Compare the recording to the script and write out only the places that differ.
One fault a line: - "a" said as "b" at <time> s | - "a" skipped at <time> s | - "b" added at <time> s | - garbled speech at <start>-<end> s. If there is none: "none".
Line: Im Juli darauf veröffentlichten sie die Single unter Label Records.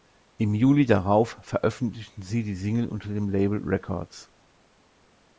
- "dem" added at 3.1 s